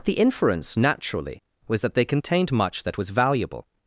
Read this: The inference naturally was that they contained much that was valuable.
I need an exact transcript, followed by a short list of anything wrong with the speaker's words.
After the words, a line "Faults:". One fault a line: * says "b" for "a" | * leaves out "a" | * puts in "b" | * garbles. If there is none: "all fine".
The inference naturally was that they contained much that was valuable.
Faults:
all fine